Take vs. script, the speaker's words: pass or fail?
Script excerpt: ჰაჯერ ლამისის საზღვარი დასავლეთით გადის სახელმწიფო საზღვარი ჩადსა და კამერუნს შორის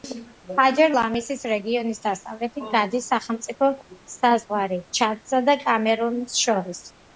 fail